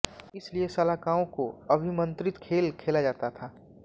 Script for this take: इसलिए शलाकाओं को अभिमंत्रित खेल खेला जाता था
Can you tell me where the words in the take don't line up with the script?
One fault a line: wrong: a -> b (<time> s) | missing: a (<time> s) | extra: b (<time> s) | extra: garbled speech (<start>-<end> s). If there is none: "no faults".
no faults